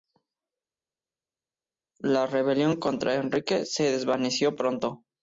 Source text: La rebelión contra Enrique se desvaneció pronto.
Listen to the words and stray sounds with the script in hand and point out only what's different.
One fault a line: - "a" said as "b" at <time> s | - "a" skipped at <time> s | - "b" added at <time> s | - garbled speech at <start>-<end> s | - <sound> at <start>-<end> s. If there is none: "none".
none